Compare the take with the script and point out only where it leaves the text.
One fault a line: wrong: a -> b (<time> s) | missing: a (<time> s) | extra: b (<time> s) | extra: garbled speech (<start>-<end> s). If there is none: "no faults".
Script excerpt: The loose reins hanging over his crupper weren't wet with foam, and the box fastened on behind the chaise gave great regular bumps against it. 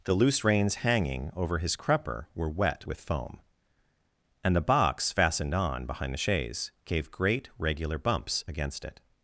wrong: weren't -> were (2.3 s)